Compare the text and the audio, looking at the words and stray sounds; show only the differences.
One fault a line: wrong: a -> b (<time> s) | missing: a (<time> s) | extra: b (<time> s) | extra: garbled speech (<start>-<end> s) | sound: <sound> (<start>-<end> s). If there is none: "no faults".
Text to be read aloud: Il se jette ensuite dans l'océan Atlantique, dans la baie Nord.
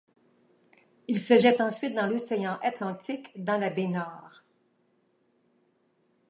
no faults